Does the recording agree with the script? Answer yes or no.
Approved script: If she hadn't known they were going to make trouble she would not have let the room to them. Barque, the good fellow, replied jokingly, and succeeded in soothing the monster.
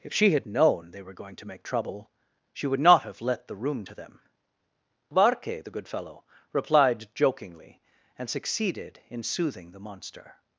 no